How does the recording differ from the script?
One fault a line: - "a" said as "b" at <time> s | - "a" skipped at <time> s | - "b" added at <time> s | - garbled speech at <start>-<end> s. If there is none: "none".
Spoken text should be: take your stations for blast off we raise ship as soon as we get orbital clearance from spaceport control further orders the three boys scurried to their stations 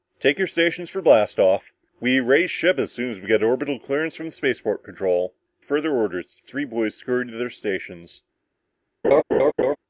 none